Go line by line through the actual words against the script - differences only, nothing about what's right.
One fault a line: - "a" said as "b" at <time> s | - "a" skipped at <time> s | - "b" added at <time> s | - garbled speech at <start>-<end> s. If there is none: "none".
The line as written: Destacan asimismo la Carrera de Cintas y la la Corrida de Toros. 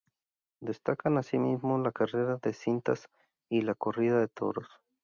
- "la" skipped at 3.7 s